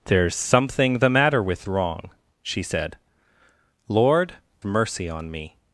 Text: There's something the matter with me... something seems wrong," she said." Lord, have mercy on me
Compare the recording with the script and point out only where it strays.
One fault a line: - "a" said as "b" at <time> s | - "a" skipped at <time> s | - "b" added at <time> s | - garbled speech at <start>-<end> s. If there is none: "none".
- "me something seems" skipped at 1.7 s
- "have" skipped at 4.3 s